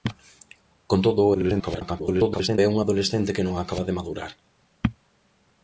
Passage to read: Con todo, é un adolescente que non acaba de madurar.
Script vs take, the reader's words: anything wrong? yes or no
yes